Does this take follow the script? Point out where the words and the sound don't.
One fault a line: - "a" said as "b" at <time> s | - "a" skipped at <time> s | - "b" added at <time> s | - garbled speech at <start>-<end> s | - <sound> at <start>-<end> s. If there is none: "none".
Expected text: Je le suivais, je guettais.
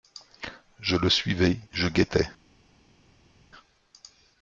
none